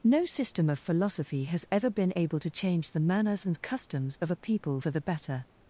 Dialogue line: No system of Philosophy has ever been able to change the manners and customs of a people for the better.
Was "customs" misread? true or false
false